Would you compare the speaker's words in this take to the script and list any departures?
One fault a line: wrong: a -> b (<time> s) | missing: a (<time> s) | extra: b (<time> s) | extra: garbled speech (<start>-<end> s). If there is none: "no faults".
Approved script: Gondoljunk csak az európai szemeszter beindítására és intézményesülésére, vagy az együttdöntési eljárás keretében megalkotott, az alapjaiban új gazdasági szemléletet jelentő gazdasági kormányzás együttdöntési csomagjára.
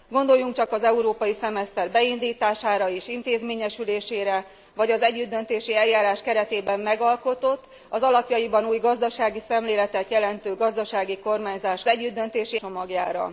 no faults